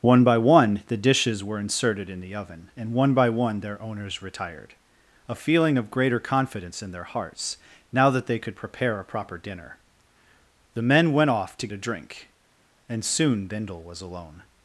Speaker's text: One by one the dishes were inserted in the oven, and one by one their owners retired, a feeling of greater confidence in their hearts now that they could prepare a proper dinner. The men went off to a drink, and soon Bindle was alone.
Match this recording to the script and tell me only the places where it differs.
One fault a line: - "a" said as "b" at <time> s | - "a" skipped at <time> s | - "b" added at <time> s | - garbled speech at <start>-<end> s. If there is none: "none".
none